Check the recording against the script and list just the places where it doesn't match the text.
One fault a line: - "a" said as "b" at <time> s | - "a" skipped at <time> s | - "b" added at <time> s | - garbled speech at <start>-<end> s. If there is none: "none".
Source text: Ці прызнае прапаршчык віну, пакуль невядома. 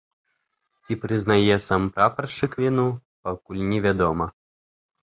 - "сам" added at 1.7 s